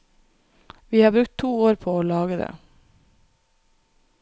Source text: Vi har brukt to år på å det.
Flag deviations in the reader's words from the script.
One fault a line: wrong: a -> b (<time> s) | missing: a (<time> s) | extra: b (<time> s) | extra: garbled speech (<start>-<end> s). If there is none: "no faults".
extra: lage (2.0 s)